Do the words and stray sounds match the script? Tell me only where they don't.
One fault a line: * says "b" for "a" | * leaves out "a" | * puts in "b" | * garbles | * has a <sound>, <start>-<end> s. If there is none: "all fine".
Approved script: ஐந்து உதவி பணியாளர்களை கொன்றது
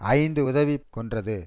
* leaves out "பணியாளர்களை"